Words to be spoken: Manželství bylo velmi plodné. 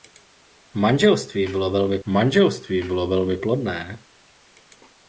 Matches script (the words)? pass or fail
fail